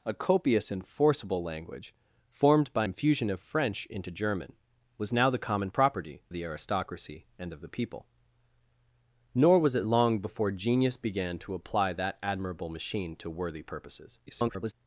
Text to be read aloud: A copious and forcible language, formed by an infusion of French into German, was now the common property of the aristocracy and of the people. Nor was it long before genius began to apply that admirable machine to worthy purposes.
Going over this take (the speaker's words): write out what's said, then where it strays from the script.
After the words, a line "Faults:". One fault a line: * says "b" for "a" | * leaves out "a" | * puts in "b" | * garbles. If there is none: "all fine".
A copious and forcible language, formed by infusion of French into German, was now the common property the aristocracy and of the people. Nor was it long before genius began to apply that admirable machine to worthy purposes. [garbled]
Faults:
* leaves out "an"
* leaves out "of"
* garbles